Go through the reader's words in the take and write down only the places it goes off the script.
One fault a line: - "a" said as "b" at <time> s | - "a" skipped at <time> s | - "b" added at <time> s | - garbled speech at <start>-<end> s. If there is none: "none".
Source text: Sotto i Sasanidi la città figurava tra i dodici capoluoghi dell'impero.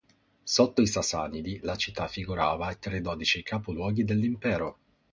none